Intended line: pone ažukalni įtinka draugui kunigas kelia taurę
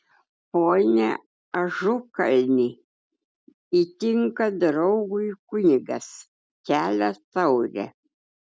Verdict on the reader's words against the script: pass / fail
pass